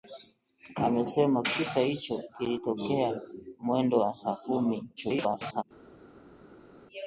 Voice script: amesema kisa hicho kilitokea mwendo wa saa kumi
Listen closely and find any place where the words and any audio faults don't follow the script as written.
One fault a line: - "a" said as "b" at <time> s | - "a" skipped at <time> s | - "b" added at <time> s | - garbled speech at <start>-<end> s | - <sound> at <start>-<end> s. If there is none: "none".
- garbled speech at 5.0-5.6 s